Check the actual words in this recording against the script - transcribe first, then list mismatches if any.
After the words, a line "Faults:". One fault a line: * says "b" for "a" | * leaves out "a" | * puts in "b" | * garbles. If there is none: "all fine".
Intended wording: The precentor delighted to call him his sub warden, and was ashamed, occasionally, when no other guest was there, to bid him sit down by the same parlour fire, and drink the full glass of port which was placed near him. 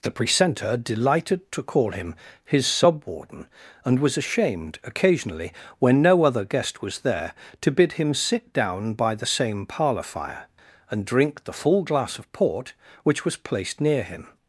The precentor delighted to call him his sub warden, and was ashamed, occasionally, when no other guest was there, to bid him sit down by the same parlour fire, and drink the full glass of port which was placed near him.
Faults:
all fine